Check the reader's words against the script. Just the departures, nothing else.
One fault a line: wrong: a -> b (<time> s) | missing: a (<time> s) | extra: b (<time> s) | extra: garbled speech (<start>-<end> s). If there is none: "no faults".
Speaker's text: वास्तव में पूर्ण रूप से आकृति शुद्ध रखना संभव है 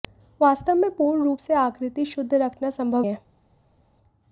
no faults